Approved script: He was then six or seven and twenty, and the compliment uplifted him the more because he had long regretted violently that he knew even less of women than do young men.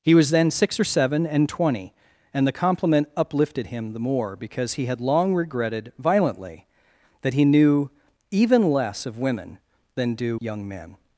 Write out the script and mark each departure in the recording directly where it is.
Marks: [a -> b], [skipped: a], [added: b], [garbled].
He was then six or seven and twenty, and the compliment uplifted him the more because he had long regretted violently that he knew even less of women than do young men.